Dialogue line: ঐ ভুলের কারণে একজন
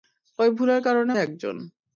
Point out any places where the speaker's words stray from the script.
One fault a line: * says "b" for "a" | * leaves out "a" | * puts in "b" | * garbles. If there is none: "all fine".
all fine